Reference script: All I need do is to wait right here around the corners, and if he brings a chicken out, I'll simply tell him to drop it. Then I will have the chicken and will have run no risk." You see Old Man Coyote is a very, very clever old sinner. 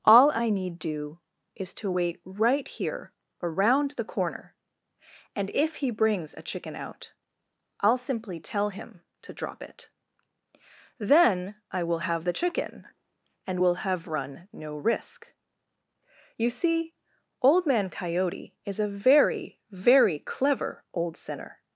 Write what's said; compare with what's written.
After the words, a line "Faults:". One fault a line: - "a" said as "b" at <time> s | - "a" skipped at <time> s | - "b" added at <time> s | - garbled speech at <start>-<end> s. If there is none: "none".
All I need do is to wait right here around the corner, and if he brings a chicken out, I'll simply tell him to drop it. Then I will have the chicken and will have run no risk." You see Old Man Coyote is a very, very clever old sinner.
Faults:
- "corners" said as "corner" at 4.0 s